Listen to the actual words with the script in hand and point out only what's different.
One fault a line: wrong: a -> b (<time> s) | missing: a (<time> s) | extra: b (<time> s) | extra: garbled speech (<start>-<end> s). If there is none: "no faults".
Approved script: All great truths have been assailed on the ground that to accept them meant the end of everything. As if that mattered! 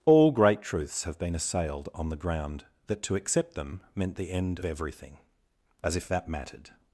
missing: of (4.6 s)